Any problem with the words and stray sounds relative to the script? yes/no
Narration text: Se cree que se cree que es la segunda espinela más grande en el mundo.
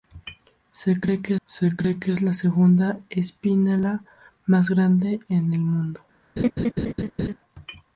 yes